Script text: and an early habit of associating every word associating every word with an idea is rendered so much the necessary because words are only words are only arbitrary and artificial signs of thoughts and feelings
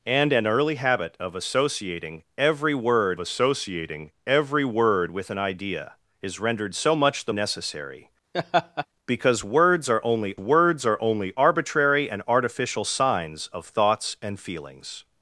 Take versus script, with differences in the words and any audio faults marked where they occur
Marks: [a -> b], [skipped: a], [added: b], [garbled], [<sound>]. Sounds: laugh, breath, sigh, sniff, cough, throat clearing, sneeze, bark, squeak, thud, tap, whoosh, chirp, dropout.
and an early habit of associating every word associating every word with an idea is rendered so much the necessary [laugh] because words are only words are only arbitrary and artificial signs of thoughts and feelings